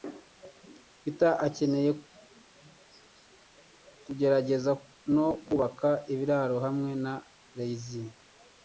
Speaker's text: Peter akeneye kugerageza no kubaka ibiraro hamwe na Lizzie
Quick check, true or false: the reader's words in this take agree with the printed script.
true